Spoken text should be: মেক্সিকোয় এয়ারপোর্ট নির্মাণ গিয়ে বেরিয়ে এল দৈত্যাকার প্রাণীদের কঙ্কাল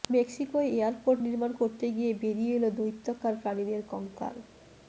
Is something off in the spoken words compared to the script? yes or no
yes